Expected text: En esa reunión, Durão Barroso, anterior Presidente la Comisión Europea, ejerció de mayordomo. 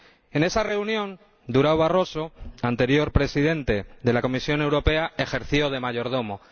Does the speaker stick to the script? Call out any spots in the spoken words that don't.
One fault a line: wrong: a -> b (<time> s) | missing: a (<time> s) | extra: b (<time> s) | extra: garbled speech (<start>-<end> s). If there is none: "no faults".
extra: de (4.0 s)